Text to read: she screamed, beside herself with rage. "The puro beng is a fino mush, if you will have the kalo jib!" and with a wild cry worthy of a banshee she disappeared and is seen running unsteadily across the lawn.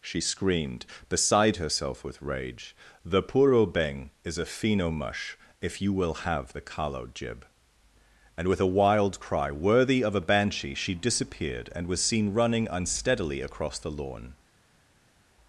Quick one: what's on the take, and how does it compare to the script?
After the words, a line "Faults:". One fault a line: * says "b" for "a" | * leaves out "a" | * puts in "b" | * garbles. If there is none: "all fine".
she screamed, beside herself with rage. "The puro beng is a fino mush, if you will have the kalo jib!" and with a wild cry worthy of a banshee she disappeared and was seen running unsteadily across the lawn.
Faults:
* says "was" for "is"